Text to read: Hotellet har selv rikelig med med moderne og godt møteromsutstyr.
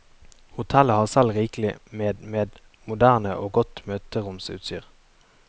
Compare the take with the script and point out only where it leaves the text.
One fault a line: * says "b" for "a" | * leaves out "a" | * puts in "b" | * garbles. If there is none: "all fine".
all fine